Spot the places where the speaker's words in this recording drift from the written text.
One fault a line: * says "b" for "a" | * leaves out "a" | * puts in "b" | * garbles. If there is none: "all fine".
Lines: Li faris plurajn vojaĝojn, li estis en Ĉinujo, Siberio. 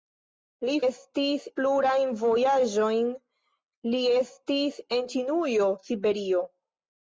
* says "estis" for "faris"